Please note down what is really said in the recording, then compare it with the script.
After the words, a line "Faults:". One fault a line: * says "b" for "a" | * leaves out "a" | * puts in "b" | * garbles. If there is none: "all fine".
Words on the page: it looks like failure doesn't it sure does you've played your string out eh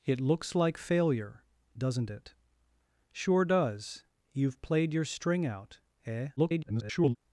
it looks like failure doesn't it sure does you've played your string out eh [garbled]
Faults:
* garbles